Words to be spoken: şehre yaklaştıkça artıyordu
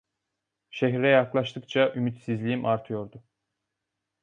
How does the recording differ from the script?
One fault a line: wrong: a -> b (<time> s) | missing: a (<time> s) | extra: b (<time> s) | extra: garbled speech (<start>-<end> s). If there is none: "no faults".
extra: ümitsizliğim (1.9 s)